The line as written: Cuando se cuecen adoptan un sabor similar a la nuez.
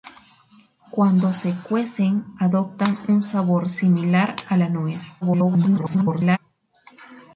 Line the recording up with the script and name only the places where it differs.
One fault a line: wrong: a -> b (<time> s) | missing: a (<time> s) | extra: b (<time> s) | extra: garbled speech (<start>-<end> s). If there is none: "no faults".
extra: garbled speech (5.2-6.4 s)